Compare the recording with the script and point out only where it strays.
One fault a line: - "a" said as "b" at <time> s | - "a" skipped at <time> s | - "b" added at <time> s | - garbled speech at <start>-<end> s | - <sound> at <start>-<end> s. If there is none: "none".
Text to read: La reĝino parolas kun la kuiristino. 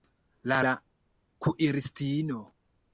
- "reĝino parolas kun" skipped at 0.6 s